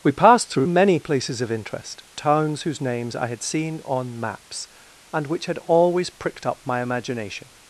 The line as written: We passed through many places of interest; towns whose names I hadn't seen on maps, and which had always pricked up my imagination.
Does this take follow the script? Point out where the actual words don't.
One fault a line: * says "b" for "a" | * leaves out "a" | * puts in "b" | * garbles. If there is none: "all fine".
* says "had" for "hadn't"